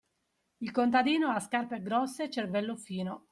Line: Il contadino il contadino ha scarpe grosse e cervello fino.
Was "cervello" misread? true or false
false